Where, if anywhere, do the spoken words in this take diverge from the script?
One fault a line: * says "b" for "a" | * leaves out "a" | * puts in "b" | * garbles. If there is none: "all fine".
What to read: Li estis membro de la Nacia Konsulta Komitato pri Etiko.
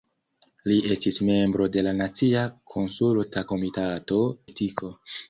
* leaves out "pri"